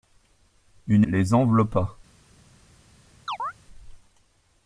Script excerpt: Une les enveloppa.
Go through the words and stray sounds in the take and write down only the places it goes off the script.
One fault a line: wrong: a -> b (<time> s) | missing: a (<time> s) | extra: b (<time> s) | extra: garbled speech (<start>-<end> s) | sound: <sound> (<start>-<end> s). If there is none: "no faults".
sound: chirp (3.3-3.5 s)